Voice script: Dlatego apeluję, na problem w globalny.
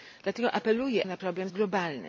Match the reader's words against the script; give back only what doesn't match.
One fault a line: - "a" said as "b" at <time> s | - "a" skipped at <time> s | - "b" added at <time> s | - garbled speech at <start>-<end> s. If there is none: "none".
none